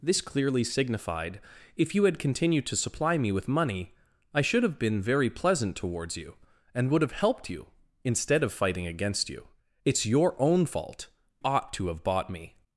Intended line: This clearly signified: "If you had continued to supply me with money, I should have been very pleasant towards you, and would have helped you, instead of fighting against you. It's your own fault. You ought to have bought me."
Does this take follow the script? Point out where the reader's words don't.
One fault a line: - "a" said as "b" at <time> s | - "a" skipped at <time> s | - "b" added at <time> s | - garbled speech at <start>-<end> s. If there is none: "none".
- "You" skipped at 11.1 s